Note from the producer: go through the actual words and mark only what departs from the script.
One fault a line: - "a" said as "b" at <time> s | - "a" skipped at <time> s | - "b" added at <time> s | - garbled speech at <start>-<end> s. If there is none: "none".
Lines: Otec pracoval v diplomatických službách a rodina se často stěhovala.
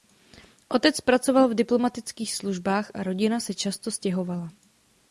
none